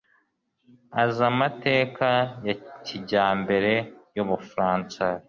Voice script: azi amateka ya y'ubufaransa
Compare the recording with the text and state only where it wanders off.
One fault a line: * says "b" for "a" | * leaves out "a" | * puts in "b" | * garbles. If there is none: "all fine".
* puts in "kijyambere"